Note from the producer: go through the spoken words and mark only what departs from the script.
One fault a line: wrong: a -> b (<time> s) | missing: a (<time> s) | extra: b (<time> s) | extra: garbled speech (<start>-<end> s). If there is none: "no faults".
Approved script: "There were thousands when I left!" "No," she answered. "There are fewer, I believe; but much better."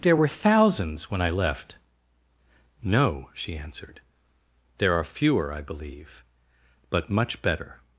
no faults